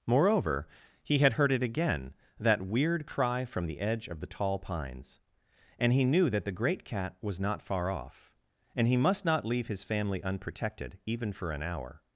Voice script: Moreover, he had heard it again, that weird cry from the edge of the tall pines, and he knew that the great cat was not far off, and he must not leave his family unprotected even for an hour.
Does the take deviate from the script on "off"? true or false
false